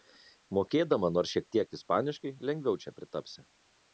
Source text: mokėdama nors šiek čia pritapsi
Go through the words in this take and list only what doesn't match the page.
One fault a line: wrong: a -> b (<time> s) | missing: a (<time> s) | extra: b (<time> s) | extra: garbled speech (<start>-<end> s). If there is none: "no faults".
extra: tiek ispaniškai lengviau (1.6 s)